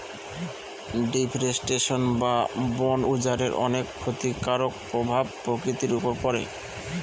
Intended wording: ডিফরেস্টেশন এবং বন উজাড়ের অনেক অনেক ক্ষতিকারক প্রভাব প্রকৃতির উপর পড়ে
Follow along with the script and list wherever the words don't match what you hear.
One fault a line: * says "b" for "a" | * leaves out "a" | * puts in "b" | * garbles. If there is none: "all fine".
* says "বা" for "এবং"
* leaves out "অনেক"